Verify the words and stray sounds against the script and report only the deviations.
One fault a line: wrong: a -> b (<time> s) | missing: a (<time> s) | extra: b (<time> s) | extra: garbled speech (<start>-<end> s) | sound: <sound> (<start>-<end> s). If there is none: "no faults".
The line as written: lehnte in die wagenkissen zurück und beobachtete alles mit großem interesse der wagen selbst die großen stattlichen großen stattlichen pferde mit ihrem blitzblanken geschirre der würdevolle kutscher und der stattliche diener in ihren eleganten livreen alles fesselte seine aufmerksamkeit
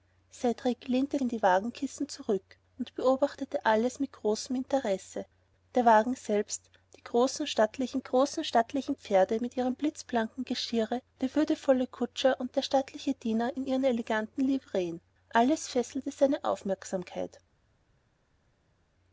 no faults